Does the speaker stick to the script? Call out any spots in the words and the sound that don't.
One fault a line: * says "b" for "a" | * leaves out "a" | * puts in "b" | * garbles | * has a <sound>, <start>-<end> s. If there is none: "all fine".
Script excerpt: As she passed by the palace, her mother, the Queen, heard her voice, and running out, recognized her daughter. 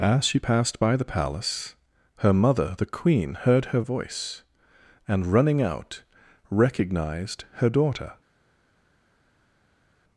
all fine